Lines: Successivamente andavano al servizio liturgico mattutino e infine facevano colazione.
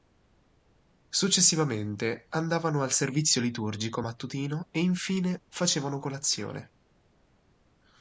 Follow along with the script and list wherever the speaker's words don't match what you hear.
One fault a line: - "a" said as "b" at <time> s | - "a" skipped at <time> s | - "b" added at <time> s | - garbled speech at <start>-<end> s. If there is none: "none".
none